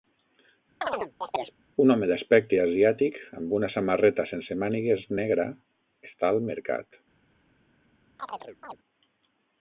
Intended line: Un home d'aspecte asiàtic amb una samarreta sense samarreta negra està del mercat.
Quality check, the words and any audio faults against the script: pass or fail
fail